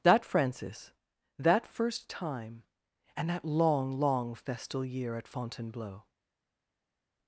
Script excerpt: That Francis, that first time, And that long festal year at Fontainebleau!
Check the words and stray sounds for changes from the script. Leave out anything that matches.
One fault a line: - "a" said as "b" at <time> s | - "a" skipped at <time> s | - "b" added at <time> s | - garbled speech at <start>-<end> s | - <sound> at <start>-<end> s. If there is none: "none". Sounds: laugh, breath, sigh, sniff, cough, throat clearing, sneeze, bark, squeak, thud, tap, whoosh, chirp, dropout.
- "long" added at 3.9 s